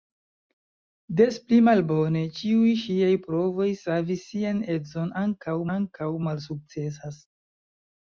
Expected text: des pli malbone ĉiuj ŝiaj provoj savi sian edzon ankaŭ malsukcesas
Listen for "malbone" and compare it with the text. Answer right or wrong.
right